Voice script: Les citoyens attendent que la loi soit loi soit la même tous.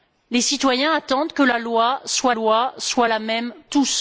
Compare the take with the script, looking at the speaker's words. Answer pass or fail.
pass